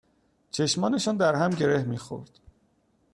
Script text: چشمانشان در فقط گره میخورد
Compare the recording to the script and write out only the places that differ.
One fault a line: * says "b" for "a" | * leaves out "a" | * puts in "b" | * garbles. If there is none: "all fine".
* says "هم" for "فقط"